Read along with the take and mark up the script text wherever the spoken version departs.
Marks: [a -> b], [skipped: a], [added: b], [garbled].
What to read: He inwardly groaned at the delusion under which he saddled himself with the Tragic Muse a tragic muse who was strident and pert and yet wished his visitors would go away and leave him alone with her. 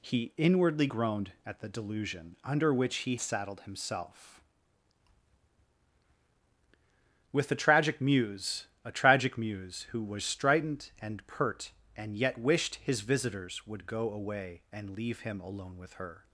He inwardly groaned at the delusion under which he saddled himself with the Tragic Muse a tragic muse who was strident and pert and yet wished his visitors would go away and leave him alone with her.